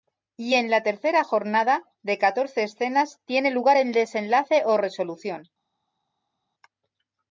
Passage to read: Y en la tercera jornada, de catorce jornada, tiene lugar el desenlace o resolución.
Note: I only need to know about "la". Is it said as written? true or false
true